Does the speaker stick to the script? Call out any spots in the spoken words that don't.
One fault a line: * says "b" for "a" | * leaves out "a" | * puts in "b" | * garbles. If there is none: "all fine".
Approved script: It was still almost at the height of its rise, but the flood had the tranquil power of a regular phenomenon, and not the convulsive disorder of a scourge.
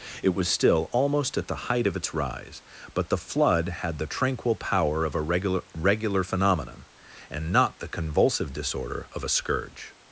* puts in "regular"